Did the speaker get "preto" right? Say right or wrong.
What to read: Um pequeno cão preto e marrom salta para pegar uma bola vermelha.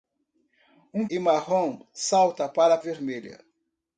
wrong